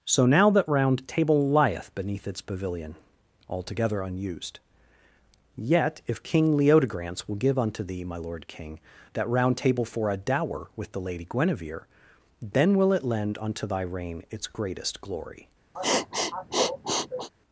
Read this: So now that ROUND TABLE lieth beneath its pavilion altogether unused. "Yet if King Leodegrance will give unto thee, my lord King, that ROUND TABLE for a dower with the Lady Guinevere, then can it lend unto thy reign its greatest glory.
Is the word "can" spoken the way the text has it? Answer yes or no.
no